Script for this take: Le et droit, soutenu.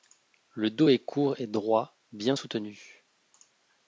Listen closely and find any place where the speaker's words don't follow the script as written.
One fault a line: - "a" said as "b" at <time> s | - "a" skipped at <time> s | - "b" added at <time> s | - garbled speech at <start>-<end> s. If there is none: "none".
- "dos est court" added at 0.7 s
- "bien" added at 2.1 s